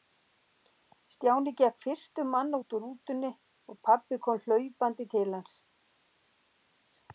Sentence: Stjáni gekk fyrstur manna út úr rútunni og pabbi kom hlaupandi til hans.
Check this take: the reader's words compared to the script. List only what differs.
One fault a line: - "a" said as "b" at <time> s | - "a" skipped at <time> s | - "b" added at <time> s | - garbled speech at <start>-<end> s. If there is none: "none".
none